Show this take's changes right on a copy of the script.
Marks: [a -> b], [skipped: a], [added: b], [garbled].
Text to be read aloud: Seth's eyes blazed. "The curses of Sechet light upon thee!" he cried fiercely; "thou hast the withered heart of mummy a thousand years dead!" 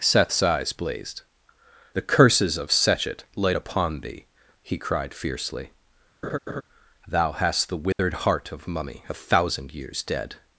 Seth's eyes blazed. "The curses of Sechet light upon thee!" he cried fiercely; "thou hast the withered heart of mummy a thousand years dead!"